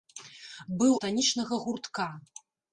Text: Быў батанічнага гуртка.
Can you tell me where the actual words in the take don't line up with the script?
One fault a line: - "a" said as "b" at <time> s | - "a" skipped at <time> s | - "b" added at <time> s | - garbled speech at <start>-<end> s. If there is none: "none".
none